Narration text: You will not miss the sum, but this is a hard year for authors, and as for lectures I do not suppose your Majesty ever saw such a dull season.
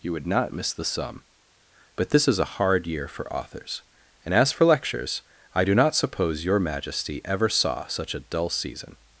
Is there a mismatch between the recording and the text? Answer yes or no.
yes